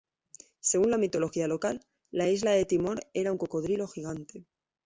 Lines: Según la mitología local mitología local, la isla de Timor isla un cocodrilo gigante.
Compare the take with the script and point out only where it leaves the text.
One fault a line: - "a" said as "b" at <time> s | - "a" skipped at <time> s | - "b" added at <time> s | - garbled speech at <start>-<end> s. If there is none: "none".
- "mitología local" skipped at 1.8 s
- "isla" said as "era" at 3.1 s